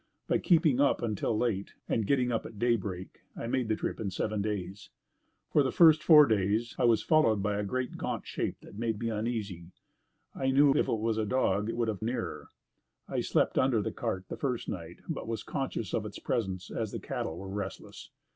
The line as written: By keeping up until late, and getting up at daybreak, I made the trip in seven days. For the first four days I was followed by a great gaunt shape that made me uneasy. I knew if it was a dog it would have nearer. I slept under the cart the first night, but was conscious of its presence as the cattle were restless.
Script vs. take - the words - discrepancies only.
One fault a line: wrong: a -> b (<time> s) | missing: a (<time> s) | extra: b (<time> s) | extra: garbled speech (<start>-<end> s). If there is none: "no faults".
no faults